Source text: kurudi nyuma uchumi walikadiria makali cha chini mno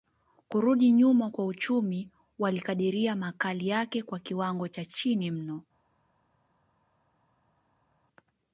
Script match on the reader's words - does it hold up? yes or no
no